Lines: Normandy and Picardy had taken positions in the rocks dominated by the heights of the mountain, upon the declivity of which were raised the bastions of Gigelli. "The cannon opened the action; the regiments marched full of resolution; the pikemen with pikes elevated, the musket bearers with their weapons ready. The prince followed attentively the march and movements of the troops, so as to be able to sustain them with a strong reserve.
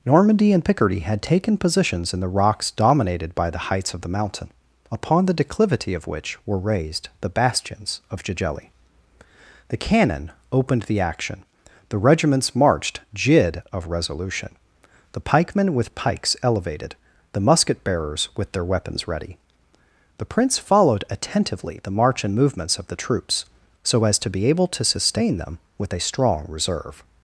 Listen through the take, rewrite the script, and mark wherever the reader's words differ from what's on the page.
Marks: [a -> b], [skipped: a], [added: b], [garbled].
Normandy and Picardy had taken positions in the rocks dominated by the heights of the mountain, upon the declivity of which were raised the bastions of Gigelli. "The cannon opened the action; the regiments marched [full -> jid] of resolution; the pikemen with pikes elevated, the musket bearers with their weapons ready. The prince followed attentively the march and movements of the troops, so as to be able to sustain them with a strong reserve.